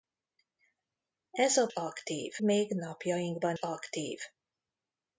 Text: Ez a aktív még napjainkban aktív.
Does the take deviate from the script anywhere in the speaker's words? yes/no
no